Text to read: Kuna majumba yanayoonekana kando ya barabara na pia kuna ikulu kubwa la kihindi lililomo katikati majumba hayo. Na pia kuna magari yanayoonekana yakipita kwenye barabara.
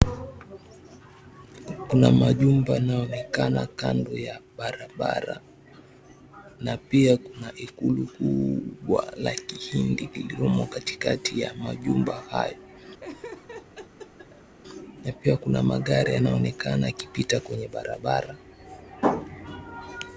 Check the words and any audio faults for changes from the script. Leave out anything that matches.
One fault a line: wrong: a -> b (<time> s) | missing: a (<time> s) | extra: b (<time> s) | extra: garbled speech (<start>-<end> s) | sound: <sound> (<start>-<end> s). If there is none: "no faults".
extra: ya (11.4 s)
sound: laugh (13.0-14.6 s)